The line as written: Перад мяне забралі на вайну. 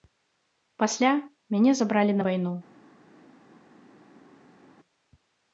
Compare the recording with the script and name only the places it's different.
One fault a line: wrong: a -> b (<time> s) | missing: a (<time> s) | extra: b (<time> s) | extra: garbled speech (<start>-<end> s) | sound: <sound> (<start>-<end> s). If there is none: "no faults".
wrong: Перад -> Пасля (0.8 s)